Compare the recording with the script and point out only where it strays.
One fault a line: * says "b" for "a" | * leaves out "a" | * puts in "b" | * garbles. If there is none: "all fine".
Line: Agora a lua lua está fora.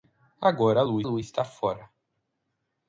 all fine